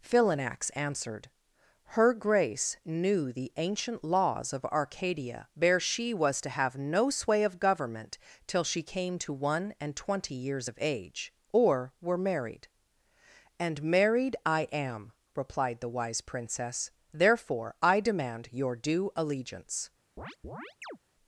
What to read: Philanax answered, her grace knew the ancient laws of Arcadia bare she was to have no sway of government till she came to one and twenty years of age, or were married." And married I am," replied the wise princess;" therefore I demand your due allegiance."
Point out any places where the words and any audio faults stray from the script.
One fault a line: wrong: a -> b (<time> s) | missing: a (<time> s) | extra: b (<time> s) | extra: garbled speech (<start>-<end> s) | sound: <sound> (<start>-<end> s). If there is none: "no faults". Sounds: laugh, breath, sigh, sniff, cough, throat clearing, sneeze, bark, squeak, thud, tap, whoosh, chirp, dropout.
sound: chirp (20.2-21.0 s)